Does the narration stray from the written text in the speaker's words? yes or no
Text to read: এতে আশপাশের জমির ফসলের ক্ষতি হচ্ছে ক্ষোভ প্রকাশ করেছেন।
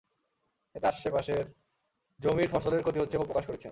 no